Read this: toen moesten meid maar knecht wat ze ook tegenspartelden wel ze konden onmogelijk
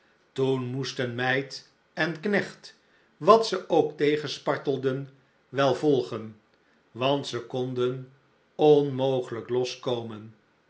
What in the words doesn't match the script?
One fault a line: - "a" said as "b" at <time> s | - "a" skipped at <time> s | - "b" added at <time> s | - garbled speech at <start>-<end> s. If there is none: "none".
- "maar" said as "en" at 1.9 s
- "volgen want" added at 5.7 s